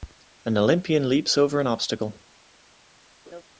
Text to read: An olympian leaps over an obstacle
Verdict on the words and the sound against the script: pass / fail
fail